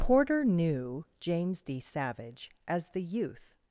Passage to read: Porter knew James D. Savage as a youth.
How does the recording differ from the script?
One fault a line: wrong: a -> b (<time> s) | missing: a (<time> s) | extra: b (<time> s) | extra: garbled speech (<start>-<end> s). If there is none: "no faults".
wrong: a -> the (2.9 s)